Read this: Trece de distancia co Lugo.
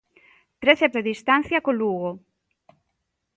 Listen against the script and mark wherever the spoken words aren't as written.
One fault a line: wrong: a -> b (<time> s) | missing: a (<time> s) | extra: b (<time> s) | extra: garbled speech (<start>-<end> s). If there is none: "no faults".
no faults